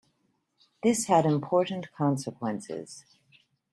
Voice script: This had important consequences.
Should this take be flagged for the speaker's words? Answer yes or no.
no